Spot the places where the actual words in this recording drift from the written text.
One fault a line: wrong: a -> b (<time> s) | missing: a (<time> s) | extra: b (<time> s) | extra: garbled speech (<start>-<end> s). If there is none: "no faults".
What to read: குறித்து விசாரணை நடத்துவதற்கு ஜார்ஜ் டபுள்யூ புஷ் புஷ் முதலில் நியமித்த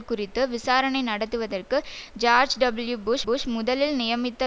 no faults